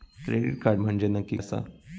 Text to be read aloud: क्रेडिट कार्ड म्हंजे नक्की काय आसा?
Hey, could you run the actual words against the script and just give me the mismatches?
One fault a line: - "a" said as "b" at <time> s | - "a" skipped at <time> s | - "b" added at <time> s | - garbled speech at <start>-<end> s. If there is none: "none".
- "काय" skipped at 1.4 s